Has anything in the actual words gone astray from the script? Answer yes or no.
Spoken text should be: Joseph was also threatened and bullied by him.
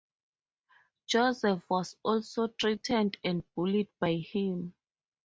no